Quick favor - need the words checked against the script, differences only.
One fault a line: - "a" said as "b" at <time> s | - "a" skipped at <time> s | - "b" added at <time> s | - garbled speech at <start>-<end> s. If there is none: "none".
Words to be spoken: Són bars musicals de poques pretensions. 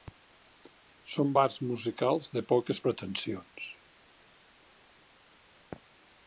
none